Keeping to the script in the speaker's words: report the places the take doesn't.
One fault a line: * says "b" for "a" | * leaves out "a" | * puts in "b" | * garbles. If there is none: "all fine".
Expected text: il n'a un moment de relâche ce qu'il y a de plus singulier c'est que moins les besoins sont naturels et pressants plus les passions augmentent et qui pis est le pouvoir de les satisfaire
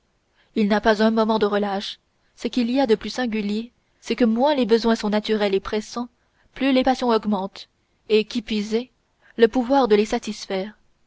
* puts in "pas"